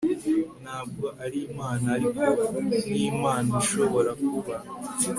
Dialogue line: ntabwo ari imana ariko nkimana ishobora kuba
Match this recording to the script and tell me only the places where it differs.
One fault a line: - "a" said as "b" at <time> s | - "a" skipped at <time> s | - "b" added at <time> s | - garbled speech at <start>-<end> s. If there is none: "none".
none